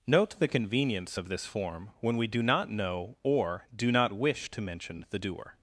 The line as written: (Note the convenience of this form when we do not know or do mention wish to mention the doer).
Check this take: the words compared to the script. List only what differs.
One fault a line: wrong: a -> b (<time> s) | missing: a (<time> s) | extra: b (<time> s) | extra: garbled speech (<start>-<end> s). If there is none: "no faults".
wrong: mention -> not (3.9 s)